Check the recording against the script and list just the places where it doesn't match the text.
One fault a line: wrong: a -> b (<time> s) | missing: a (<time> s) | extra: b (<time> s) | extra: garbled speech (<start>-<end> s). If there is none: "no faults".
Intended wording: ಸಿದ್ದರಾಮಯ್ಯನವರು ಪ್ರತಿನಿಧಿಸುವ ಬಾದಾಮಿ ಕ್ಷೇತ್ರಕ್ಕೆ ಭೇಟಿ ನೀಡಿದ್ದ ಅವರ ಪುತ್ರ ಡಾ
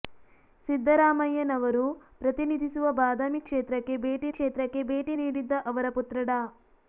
extra: ಕ್ಷೇತ್ರಕ್ಕೆ ಭೇಟಿ (4.3 s)